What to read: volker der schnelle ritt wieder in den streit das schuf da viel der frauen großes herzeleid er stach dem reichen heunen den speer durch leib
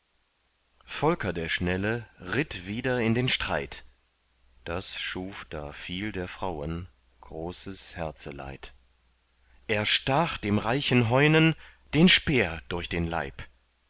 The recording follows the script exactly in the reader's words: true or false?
false